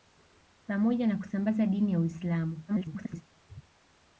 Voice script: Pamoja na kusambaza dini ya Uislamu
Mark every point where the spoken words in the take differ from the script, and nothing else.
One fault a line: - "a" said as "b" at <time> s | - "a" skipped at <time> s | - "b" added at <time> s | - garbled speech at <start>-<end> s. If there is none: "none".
- garbled speech at 2.7-3.2 s